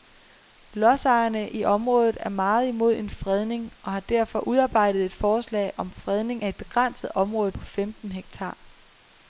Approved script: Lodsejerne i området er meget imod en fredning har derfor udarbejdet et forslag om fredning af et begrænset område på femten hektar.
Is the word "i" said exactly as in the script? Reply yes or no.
yes